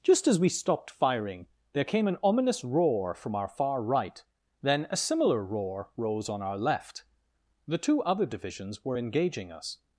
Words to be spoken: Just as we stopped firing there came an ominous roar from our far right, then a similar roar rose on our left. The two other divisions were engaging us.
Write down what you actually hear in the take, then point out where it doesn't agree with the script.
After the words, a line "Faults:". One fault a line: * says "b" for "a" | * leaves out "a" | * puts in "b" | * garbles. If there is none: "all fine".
Just as we stopped firing there came an ominous roar from our far right, then a similar roar rose on our left. The two other divisions were engaging us.
Faults:
all fine